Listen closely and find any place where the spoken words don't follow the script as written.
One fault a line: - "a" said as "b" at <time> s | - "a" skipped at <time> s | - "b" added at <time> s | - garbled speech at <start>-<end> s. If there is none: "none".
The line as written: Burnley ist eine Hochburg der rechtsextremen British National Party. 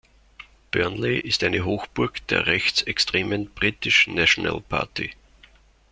none